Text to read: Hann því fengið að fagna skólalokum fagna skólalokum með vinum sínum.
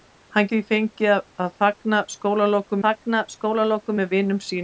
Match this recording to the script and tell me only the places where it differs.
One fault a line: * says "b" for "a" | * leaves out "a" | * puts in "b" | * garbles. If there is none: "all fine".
all fine